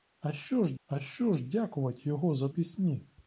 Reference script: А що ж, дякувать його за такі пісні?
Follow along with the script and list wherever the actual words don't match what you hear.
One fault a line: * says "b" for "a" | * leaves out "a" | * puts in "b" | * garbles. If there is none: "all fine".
* puts in "а що ж"
* leaves out "такі"